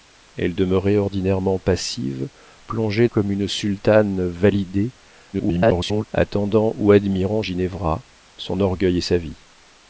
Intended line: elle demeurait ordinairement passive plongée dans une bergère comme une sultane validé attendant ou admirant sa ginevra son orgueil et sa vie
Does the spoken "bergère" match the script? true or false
false